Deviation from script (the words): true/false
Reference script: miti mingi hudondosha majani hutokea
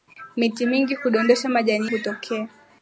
false